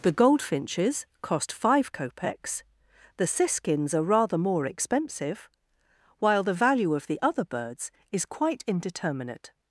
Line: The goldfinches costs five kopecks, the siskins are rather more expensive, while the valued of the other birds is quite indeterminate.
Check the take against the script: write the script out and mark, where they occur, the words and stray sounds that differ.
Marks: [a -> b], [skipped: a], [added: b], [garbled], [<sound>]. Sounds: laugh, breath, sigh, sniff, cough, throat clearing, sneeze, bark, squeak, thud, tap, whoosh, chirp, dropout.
The goldfinches [costs -> cost] five kopecks, the siskins are rather more expensive, while the [valued -> value] of the other birds is quite indeterminate.